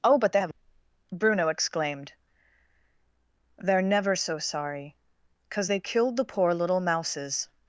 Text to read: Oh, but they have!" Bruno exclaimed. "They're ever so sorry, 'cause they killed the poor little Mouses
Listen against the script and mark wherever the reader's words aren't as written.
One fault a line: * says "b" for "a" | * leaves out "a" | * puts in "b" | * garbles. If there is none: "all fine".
* says "never" for "ever"